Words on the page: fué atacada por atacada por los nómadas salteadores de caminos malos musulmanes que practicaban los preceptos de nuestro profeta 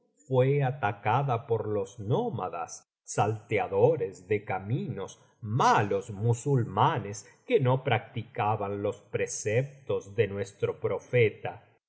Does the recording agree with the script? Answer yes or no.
no